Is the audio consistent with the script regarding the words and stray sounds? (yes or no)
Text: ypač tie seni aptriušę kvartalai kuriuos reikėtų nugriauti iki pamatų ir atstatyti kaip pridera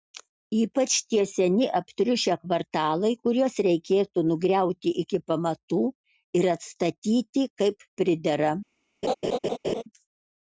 no